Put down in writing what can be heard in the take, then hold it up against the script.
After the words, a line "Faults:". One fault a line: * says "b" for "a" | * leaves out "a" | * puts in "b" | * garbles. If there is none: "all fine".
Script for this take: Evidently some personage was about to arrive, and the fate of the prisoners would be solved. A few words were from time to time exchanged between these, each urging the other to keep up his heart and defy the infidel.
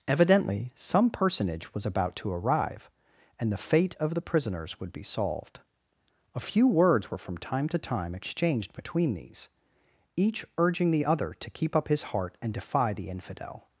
Evidently some personage was about to arrive, and the fate of the prisoners would be solved. A few words were from time to time exchanged between these, each urging the other to keep up his heart and defy the infidel.
Faults:
all fine